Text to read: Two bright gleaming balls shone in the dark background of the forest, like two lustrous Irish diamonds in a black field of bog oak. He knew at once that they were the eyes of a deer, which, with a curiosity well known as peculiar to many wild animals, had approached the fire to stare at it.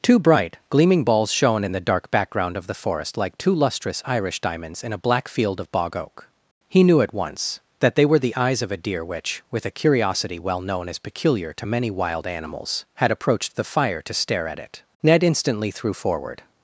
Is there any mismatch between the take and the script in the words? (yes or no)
yes